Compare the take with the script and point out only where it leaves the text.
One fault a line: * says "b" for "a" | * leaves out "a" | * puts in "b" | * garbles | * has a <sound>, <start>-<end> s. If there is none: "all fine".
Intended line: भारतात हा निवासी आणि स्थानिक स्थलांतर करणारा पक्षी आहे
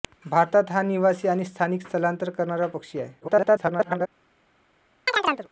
* garbles
* has a chirp, 5.1-5.5 s